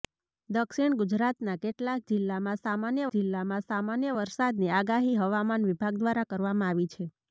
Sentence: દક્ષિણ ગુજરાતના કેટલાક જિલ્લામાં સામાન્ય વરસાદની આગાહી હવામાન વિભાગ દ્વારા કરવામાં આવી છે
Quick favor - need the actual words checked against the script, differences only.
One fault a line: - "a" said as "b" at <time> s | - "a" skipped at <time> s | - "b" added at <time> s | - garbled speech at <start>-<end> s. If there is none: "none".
- "જિલ્લામાં સામાન્ય" added at 3.1 s